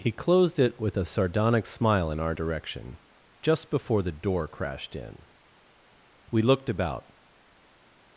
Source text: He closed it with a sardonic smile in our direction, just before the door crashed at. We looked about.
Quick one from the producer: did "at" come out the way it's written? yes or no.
no